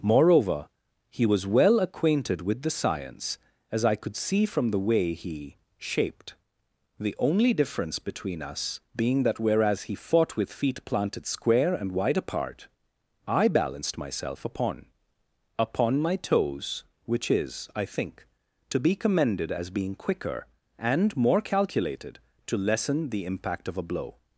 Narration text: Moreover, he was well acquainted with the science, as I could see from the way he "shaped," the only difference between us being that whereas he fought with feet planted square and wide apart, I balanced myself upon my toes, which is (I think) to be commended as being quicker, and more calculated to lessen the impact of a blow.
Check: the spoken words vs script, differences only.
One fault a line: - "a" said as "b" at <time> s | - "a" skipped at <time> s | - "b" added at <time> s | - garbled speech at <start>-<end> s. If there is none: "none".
- "upon" added at 15.6 s